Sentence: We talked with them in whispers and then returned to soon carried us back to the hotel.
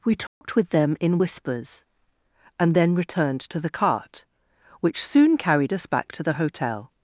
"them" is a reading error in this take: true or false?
false